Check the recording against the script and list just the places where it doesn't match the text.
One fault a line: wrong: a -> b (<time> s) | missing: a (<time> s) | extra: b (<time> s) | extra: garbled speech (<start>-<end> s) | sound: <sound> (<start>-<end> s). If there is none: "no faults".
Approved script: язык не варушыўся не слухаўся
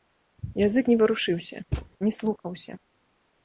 sound: thud (1.7-1.9 s)